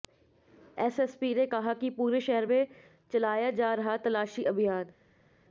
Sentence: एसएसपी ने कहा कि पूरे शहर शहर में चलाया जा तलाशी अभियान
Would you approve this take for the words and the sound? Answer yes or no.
no